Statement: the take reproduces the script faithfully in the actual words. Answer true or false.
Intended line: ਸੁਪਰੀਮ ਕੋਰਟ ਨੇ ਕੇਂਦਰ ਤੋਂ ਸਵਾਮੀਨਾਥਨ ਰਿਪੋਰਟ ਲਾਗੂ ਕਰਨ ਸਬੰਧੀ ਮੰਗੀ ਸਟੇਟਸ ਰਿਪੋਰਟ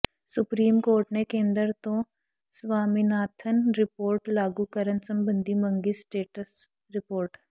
true